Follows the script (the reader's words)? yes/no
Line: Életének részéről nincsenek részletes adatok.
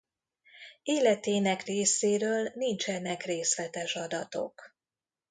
yes